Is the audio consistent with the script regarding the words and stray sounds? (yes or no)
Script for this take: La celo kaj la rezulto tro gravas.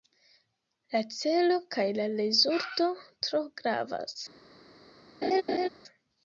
no